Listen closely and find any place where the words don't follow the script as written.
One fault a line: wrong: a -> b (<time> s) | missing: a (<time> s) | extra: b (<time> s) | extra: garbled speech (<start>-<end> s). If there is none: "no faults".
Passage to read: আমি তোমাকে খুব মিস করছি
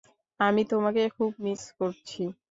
no faults